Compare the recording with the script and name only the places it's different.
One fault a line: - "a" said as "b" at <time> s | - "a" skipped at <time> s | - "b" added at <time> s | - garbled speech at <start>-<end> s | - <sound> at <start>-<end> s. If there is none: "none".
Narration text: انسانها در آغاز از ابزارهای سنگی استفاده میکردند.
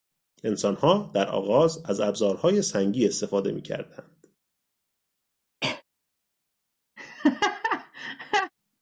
- cough at 5.6-5.8 s
- laugh at 7.0-8.5 s